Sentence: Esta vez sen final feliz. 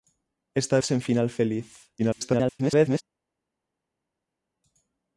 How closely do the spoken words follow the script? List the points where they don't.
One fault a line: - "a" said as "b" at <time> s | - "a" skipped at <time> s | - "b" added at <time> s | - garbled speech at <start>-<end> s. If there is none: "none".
- "vez" skipped at 0.8 s
- garbled speech at 2.0-3.0 s